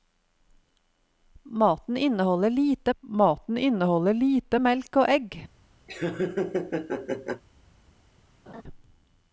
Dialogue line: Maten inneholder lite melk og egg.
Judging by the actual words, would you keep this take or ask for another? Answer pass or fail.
fail